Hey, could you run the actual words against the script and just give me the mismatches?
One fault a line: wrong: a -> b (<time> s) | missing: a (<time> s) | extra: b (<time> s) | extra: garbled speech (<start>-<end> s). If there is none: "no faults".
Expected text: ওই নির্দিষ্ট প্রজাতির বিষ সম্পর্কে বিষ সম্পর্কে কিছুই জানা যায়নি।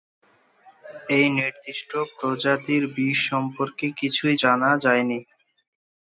wrong: ওই -> এই (1.1 s)
missing: বিষ সম্পর্কে (3.9 s)